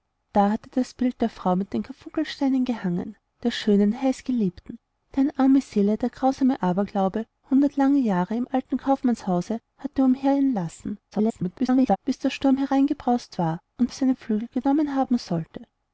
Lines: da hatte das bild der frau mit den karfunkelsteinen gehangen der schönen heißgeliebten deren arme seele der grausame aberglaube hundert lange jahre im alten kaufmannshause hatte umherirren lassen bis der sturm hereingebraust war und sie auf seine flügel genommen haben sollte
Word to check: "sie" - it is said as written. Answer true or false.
false